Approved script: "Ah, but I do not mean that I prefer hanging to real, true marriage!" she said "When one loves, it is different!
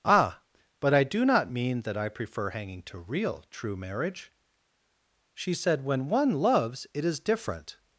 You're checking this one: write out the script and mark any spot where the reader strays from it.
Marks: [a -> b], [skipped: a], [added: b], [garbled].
"Ah, but I do not mean that I prefer hanging to real, true marriage!" she said "When one loves, it is different!